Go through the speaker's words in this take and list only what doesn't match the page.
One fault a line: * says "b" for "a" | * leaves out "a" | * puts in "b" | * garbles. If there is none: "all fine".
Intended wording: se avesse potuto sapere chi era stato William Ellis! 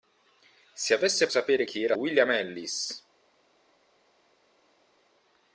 * leaves out "potuto"
* leaves out "stato"